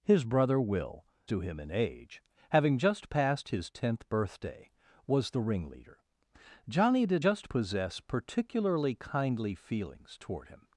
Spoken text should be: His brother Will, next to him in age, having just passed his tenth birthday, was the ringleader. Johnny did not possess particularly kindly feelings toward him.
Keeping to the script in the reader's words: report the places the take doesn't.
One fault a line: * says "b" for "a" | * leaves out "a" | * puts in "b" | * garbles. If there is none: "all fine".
* leaves out "next"
* says "just" for "not"